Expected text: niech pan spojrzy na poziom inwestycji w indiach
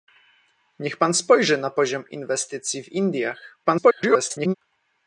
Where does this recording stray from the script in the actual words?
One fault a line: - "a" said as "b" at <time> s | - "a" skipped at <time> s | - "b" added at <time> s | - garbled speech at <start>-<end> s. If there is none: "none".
- garbled speech at 3.6-4.5 s